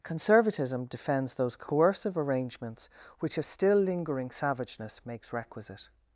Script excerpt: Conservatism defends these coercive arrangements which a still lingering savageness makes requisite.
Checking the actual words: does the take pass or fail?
fail